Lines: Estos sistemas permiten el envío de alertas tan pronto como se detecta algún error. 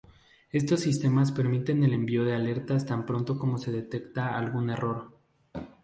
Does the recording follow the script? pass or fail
pass